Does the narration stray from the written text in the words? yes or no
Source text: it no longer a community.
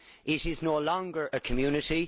yes